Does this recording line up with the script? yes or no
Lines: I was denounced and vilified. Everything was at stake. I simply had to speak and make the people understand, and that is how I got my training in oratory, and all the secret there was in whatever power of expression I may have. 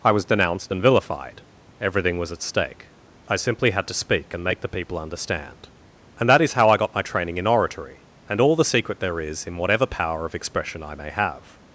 no